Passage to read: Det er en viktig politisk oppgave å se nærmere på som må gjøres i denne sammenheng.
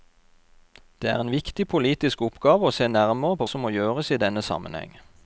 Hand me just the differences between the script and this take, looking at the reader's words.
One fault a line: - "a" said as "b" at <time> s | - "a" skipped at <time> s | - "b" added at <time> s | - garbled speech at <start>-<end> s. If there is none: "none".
none